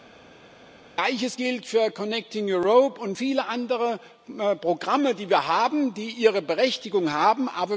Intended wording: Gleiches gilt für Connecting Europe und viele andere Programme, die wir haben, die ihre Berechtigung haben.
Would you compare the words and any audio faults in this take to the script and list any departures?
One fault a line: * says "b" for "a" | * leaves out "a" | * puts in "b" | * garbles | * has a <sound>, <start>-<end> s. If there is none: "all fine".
all fine